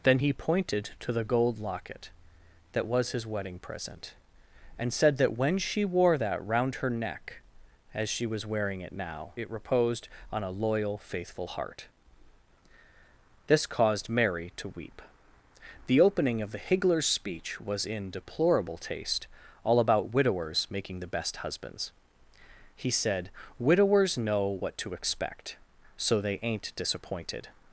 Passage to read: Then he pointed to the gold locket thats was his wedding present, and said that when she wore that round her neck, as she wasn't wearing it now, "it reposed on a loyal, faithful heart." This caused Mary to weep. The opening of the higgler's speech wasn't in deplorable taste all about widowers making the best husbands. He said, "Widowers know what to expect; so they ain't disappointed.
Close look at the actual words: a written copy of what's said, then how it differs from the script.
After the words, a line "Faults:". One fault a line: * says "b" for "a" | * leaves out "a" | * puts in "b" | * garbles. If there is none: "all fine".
Then he pointed to the gold locket that was his wedding present, and said that when she wore that round her neck, as she was wearing it now, "it reposed on a loyal, faithful heart." This caused Mary to weep. The opening of the higgler's speech was in deplorable taste all about widowers making the best husbands. He said, "Widowers know what to expect; so they ain't disappointed.
Faults:
* says "that" for "thats"
* says "was" for "wasn't"
* says "was" for "wasn't"